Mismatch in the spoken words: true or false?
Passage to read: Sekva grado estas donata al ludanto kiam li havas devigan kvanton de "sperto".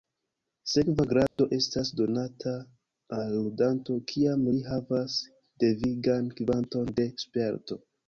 false